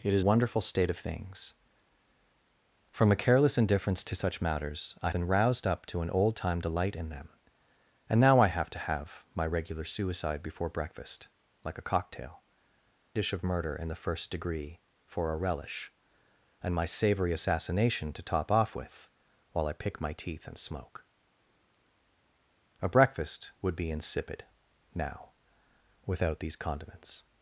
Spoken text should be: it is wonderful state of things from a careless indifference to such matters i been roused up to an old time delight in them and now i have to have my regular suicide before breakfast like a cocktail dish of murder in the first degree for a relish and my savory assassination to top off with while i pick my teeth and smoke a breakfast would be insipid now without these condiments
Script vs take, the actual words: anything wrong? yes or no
no